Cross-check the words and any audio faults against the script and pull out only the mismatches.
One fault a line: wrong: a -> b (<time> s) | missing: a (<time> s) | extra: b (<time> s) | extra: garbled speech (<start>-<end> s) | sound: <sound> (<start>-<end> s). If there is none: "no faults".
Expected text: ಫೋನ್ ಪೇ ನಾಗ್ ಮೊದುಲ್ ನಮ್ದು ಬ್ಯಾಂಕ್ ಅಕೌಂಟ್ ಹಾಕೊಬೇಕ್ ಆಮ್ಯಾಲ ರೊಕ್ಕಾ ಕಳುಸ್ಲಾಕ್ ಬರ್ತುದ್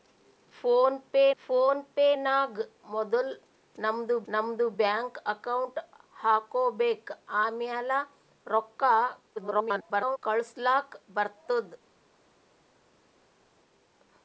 extra: ಫೋನ್ ಪೇ (1.4 s)
extra: ನಮ್ದು (4.3 s)
extra: garbled speech (9.4-10.2 s)